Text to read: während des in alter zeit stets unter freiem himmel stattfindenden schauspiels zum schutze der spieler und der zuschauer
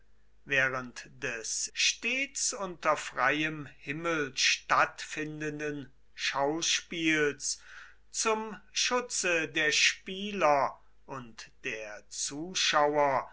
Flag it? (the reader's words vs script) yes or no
yes